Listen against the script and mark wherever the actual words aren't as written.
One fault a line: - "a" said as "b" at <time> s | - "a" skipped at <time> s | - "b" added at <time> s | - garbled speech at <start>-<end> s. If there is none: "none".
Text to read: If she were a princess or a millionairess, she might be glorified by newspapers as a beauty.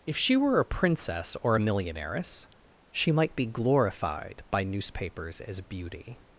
- "a" skipped at 5.6 s